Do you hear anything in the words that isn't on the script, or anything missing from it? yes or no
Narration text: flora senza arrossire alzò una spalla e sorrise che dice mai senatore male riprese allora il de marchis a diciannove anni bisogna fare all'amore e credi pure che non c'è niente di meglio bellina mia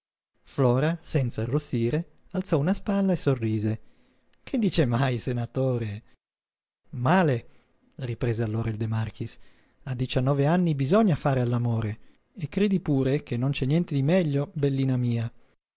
no